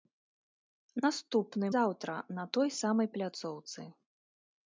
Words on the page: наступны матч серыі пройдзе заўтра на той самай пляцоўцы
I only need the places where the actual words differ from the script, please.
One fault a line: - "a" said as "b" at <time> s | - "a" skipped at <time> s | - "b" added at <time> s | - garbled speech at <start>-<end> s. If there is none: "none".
- "матч серыі пройдзе" skipped at 1.7 s